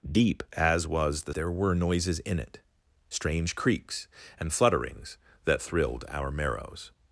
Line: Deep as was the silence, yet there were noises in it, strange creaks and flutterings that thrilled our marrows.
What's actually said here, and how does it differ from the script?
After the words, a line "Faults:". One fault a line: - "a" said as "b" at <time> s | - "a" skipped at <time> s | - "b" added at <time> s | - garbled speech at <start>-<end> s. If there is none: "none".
Deep as was the there were noises in it, strange creaks and flutterings that thrilled our marrows.
Faults:
- "silence yet" skipped at 1.3 s